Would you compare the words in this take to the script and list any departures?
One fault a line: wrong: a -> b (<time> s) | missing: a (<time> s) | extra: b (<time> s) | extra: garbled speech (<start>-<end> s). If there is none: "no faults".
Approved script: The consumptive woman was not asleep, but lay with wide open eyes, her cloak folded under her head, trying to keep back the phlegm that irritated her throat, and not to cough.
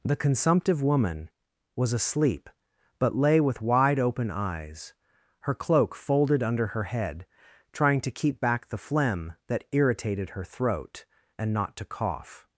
missing: not (1.9 s)